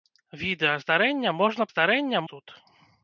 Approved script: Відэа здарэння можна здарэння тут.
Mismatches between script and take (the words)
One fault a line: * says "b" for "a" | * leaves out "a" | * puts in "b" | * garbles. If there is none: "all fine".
all fine